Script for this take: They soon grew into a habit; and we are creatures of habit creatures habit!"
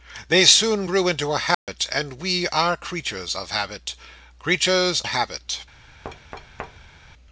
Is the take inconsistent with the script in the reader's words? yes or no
no